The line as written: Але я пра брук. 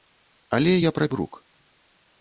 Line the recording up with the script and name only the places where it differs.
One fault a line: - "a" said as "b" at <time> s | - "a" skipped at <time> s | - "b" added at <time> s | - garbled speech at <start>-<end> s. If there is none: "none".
none